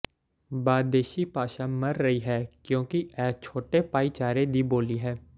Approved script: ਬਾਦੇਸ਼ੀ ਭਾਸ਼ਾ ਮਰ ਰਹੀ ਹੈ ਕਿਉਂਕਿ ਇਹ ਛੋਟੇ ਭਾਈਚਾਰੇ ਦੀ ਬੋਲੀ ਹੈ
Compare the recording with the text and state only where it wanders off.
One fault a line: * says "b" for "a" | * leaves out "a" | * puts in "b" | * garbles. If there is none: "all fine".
all fine